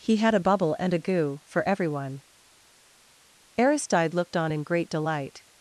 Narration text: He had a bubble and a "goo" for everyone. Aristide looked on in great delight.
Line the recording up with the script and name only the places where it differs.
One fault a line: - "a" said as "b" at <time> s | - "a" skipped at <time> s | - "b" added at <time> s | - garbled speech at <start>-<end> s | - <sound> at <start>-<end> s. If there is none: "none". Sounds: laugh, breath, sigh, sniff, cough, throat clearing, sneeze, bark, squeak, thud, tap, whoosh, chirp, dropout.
none